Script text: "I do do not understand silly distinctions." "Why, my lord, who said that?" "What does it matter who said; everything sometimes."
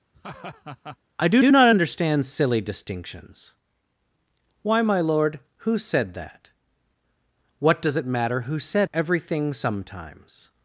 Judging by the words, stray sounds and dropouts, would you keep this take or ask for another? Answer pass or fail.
fail